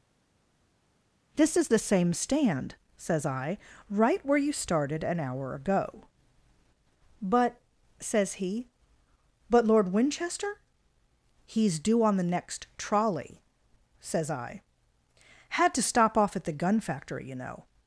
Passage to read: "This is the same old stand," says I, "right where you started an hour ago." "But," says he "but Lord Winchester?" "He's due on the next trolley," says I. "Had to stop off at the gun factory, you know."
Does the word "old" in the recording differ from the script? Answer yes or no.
yes